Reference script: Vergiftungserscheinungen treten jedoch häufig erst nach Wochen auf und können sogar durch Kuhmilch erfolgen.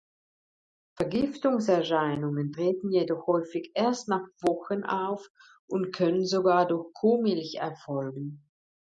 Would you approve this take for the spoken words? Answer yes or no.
yes